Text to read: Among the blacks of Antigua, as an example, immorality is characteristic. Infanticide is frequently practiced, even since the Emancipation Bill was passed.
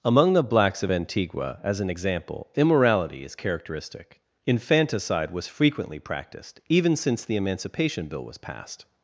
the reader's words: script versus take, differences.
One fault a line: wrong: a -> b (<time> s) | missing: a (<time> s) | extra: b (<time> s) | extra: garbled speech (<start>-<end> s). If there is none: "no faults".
wrong: is -> was (5.3 s)